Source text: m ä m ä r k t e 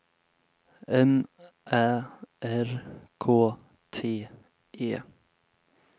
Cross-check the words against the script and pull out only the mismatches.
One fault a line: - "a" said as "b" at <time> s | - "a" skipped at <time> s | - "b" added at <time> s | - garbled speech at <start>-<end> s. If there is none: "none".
- "m ä" skipped at 1.9 s